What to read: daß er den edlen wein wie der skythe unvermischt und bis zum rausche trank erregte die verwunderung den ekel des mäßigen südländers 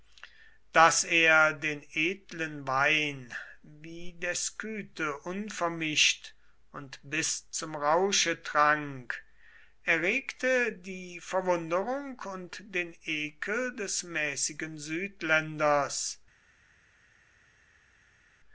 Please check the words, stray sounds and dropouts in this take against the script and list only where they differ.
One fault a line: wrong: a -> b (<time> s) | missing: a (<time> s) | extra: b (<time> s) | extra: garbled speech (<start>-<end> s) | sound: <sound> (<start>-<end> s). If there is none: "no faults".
extra: und (12.3 s)